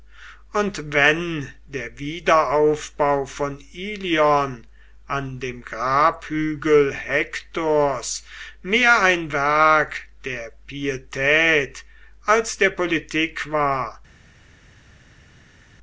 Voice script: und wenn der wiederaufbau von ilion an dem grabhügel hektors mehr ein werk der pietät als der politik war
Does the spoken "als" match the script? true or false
true